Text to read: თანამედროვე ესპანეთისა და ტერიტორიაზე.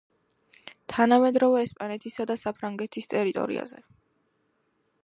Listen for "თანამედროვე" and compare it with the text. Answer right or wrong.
right